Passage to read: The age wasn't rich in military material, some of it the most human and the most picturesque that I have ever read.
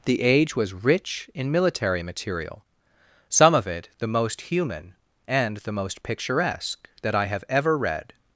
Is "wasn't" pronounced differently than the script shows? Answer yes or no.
yes